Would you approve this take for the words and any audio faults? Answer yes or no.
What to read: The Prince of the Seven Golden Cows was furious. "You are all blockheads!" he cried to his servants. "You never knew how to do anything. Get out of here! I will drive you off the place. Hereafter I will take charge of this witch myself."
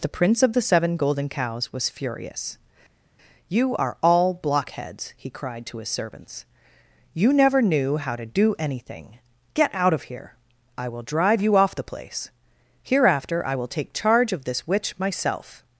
yes